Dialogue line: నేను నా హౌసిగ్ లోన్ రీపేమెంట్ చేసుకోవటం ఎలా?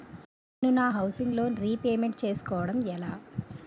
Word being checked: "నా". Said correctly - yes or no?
yes